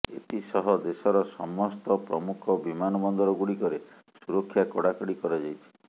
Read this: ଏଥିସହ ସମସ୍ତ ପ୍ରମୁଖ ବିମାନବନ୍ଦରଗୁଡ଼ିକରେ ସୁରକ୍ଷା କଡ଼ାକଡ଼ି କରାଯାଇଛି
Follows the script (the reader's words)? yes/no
no